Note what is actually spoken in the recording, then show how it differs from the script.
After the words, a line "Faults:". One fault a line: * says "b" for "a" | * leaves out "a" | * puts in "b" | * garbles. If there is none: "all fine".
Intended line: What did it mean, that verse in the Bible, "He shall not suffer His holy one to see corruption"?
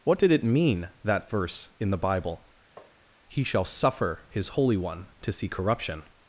What did it mean, that verse in the Bible, "He shall suffer His holy one to see corruption"?
Faults:
* leaves out "not"